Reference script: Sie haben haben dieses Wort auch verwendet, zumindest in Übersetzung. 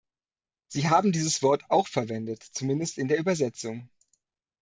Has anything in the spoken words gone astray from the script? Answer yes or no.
yes